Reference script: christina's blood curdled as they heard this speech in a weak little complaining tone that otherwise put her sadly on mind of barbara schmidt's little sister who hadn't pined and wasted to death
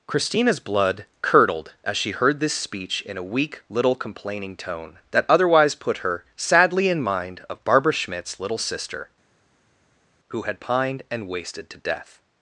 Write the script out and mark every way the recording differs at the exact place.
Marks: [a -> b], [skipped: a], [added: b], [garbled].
christina's blood curdled as [they -> she] heard this speech in a weak little complaining tone that otherwise put her sadly [on -> in] mind of barbara schmidt's little sister who [hadn't -> had] pined and wasted to death